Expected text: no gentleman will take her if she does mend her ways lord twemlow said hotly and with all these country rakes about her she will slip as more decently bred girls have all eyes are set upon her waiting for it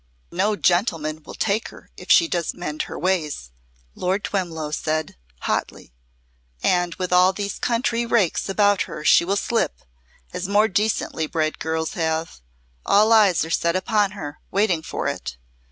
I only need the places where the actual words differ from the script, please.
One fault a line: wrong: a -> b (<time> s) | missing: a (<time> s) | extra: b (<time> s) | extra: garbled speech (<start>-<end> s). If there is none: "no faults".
no faults